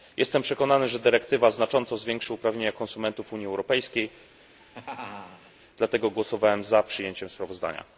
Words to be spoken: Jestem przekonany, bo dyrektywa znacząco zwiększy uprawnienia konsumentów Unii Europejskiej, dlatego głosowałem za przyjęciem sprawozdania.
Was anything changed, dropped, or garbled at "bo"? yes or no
yes